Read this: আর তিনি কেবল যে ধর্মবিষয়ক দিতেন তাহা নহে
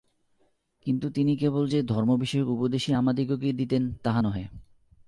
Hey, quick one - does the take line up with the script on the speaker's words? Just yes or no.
no